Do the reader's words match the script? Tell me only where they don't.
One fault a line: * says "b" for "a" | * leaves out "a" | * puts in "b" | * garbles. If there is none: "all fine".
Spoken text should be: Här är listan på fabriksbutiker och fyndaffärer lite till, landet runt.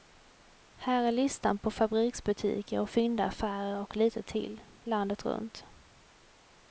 * puts in "och"